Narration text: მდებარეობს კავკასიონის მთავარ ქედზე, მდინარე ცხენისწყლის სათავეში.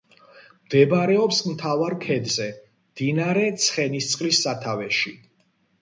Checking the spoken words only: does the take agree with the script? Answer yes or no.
no